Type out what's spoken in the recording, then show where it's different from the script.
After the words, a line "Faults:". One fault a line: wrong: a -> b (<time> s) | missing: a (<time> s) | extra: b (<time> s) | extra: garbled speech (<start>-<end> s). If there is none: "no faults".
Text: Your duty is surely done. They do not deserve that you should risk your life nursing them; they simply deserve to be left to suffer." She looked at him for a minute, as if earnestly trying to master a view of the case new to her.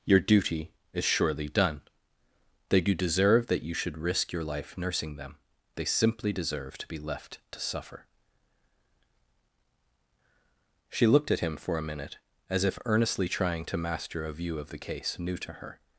Your duty is surely done. They do deserve that you should risk your life nursing them; they simply deserve to be left to suffer." She looked at him for a minute, as if earnestly trying to master a view of the case new to her.
Faults:
missing: not (3.0 s)